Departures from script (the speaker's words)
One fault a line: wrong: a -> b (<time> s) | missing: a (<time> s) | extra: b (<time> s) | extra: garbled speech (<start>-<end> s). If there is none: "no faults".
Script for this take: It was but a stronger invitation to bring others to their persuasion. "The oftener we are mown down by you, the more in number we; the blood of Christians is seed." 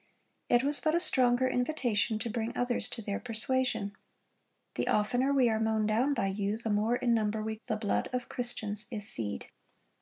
no faults